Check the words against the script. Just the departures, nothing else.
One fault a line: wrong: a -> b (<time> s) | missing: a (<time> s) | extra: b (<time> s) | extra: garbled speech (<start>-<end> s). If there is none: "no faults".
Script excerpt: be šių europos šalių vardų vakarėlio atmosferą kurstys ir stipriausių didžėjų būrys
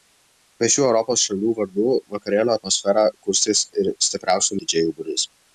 no faults